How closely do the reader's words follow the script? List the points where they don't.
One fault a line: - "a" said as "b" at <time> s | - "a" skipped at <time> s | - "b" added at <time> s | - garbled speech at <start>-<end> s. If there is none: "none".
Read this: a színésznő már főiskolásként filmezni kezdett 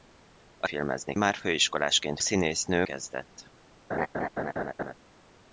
- "színésznő" said as "filmezni" at 0.7 s
- "filmezni" said as "színésznő" at 2.2 s